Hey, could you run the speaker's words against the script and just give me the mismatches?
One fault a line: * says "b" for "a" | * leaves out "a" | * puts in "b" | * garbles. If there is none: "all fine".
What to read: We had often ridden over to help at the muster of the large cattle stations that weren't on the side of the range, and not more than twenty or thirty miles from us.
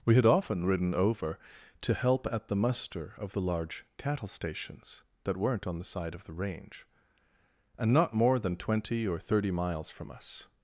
all fine